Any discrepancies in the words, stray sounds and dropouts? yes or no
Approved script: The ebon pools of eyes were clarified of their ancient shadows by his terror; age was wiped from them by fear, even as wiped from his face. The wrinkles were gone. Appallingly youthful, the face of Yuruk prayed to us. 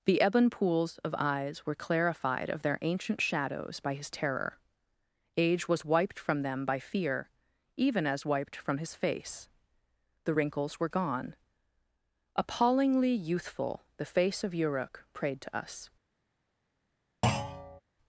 yes